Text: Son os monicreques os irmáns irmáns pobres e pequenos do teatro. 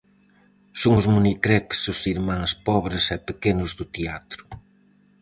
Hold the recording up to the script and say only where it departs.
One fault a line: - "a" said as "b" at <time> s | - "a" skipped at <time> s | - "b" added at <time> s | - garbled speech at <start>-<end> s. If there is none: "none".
- "irmáns" skipped at 2.5 s